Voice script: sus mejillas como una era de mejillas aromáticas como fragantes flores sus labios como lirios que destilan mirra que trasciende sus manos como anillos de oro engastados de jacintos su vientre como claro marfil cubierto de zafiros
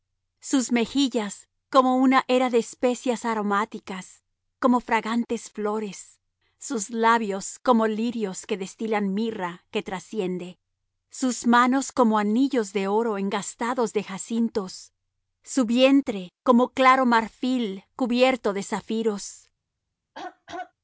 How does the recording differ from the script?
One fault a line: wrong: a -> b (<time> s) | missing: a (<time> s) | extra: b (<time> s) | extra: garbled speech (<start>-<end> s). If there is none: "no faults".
wrong: mejillas -> especias (2.6 s)